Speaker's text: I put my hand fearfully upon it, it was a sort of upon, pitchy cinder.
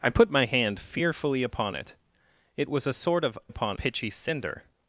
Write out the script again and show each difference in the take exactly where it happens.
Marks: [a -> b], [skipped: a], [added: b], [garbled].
I put my hand fearfully upon it, it was a sort of upon, pitchy cinder.